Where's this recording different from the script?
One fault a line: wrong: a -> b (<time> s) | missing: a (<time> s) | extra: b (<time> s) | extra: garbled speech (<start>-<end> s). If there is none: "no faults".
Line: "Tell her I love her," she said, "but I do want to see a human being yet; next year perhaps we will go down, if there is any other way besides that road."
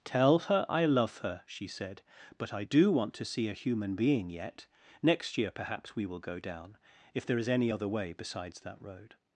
no faults